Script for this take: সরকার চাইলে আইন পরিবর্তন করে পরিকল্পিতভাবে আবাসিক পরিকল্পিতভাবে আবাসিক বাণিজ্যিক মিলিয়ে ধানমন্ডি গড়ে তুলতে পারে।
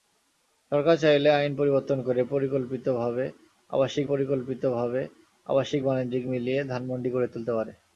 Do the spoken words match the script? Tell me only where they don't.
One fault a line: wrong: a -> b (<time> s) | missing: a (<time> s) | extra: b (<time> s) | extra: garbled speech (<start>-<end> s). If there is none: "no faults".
no faults